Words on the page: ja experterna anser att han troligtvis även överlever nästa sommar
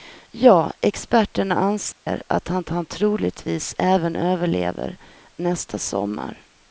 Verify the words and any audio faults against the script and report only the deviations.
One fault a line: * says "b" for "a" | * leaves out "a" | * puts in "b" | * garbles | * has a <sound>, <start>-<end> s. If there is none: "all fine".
* has a dropout, 1.9-2.1 s
* puts in "han"